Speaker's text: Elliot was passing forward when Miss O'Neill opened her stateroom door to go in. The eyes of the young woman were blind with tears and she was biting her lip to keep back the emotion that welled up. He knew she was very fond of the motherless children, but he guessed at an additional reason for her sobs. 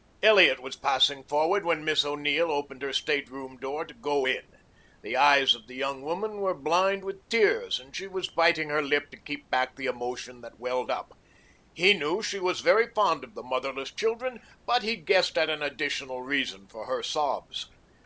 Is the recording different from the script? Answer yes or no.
no